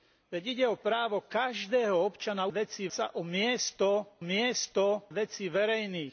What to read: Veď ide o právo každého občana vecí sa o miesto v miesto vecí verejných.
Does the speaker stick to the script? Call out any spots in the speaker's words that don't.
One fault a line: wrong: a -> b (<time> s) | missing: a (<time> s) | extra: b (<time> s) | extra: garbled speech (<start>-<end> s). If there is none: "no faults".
no faults